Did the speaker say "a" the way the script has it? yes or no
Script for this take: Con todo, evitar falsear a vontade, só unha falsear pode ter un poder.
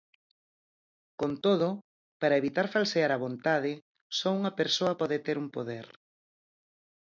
yes